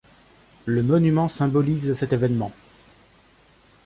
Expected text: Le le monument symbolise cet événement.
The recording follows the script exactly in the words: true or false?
false